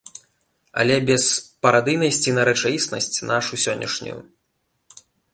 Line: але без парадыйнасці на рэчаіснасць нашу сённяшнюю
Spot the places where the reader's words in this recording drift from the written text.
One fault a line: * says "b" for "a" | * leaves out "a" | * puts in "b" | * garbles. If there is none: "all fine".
all fine